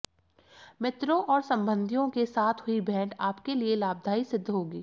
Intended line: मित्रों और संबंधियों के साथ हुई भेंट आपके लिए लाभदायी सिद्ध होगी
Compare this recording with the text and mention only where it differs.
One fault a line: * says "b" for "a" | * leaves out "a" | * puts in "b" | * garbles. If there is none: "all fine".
all fine